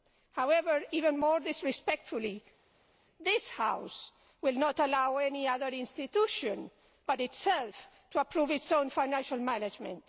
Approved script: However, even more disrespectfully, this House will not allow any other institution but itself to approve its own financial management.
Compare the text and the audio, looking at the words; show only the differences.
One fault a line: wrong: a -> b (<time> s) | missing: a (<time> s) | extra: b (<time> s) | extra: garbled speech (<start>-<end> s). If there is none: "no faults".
no faults